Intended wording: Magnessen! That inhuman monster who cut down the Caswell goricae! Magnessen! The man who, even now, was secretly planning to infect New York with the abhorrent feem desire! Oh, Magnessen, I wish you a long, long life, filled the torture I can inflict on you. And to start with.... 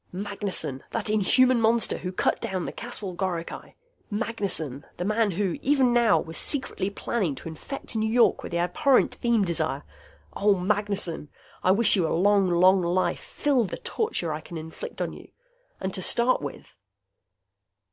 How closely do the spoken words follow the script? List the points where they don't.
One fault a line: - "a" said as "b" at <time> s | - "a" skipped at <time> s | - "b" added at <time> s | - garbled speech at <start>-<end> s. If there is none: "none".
none